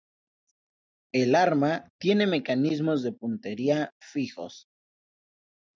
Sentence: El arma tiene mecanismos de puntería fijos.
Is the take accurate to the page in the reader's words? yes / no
yes